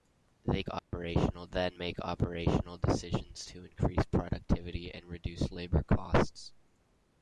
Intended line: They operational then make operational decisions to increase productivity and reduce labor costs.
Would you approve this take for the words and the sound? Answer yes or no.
no